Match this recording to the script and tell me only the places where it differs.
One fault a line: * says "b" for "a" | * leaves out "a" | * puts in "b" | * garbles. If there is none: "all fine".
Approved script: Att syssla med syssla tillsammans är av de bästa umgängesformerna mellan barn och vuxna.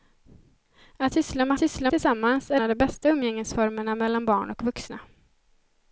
all fine